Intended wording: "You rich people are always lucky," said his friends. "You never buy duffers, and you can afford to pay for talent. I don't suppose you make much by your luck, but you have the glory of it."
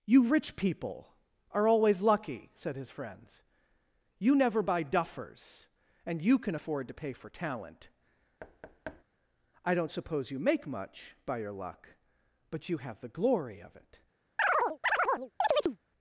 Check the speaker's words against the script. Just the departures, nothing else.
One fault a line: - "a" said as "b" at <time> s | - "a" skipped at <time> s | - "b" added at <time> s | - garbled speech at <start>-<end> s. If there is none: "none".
none